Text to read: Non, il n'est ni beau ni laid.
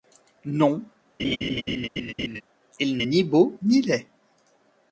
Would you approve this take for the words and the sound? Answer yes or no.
no